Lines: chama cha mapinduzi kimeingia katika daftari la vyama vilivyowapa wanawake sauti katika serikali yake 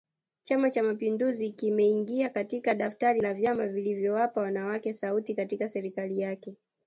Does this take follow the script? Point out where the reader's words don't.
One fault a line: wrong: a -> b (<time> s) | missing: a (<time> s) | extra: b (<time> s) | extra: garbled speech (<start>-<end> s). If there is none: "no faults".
no faults